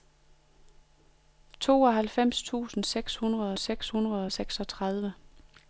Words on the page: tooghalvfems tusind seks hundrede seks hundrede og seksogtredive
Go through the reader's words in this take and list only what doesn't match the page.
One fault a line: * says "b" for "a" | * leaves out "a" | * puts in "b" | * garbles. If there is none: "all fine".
all fine